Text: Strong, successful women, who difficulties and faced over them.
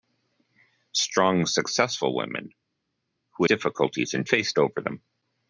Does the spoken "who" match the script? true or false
true